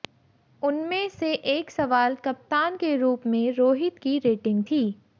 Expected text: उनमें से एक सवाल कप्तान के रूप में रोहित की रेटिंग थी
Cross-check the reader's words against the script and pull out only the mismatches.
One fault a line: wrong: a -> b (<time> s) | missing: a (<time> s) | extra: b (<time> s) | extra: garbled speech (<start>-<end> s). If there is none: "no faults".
no faults